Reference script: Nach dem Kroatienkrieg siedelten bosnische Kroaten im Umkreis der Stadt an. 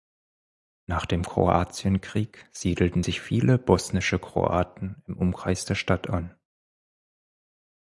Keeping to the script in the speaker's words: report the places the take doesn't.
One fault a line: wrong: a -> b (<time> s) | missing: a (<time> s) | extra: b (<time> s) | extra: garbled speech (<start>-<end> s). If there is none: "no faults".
extra: sich viele (3.0 s)